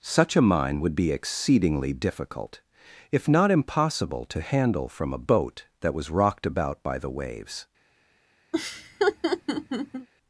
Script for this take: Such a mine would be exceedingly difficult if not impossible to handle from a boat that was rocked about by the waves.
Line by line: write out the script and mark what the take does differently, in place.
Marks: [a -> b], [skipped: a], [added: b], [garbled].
Such a mine would be exceedingly difficult if not impossible to handle from a boat that was rocked about by the waves.